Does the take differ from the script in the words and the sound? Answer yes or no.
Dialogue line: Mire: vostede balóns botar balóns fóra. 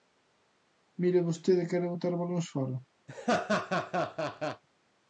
yes